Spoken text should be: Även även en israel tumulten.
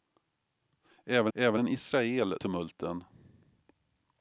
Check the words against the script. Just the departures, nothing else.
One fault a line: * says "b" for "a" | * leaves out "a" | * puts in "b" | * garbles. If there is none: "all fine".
all fine